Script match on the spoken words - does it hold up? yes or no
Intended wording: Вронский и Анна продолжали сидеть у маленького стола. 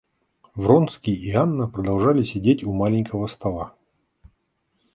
yes